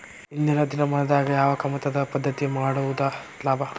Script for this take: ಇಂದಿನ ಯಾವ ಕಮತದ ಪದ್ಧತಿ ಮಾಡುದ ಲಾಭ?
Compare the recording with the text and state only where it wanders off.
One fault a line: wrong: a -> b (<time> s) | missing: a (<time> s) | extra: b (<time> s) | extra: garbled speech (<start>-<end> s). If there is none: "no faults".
extra: ದಿನಮಾನದಾಗ (0.6 s)